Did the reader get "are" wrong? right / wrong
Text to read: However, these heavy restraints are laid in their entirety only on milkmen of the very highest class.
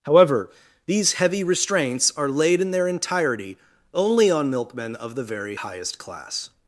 right